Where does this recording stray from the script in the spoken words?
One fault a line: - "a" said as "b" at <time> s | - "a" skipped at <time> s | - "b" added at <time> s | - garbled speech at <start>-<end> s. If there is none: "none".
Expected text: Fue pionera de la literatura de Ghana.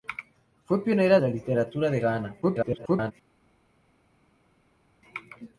- "de" skipped at 1.2 s
- garbled speech at 2.4-3.1 s